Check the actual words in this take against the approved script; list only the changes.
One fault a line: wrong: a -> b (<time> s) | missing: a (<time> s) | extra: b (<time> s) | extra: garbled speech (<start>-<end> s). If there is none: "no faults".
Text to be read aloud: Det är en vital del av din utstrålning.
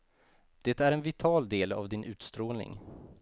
no faults